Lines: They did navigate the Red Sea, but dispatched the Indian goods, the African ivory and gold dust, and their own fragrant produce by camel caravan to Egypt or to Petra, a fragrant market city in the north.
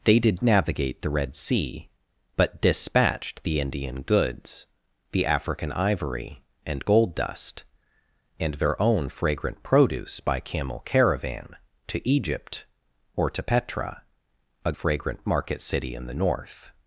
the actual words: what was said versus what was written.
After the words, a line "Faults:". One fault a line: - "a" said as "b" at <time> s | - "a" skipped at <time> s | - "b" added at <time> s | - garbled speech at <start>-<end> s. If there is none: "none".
They did navigate the Red Sea, but dispatched the Indian goods, the African ivory and gold dust, and their own fragrant produce by camel caravan to Egypt or to Petra, a fragrant market city in the north.
Faults:
none